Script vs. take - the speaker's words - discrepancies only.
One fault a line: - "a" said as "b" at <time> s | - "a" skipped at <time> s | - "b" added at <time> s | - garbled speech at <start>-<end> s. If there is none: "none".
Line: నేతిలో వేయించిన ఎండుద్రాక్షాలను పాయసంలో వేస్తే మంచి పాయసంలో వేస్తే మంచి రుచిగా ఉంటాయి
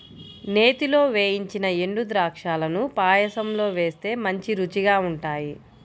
- "పాయసంలో వేస్తే మంచి" skipped at 4.5 s